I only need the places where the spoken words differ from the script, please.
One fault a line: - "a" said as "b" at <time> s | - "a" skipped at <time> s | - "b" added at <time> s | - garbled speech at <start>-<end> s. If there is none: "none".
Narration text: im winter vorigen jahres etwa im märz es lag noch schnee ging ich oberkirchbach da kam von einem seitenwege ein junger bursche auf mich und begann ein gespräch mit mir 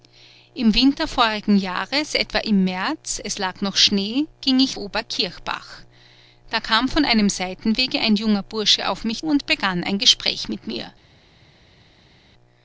none